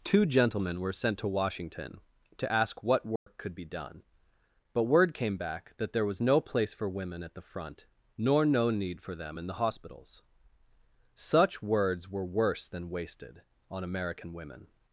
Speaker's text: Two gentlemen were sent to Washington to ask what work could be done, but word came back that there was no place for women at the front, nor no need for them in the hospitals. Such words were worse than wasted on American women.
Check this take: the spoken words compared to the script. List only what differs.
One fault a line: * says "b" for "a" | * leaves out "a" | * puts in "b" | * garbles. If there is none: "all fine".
all fine